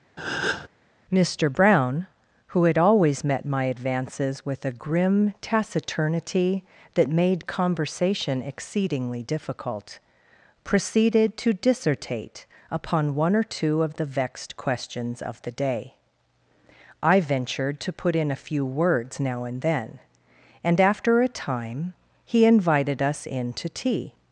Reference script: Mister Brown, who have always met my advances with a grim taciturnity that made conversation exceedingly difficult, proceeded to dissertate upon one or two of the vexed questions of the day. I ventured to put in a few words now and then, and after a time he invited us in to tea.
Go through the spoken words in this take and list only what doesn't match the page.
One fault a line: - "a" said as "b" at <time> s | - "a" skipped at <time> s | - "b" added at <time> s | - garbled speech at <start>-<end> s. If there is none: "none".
- "have" said as "had" at 2.6 s